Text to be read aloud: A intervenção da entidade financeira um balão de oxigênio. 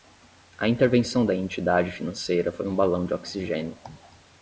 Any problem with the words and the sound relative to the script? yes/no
yes